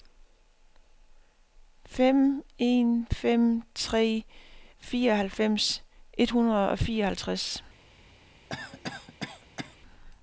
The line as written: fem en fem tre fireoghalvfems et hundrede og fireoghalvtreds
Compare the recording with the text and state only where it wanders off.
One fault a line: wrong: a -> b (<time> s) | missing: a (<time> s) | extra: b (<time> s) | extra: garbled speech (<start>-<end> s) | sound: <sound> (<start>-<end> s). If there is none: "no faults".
sound: cough (8.5-9.8 s)